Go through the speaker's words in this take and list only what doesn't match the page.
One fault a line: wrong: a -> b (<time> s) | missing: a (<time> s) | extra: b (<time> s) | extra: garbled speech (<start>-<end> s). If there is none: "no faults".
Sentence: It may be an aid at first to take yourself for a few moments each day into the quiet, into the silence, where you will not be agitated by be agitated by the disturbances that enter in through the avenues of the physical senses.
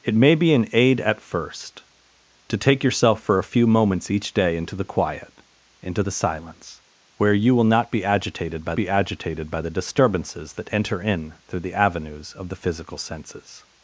no faults